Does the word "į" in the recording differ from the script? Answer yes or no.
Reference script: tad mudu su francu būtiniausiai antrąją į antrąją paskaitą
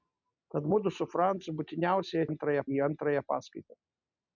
no